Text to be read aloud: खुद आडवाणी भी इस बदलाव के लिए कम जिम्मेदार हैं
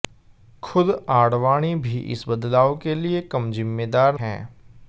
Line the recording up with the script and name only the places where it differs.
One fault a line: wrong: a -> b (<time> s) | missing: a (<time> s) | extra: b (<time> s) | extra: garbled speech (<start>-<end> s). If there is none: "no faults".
no faults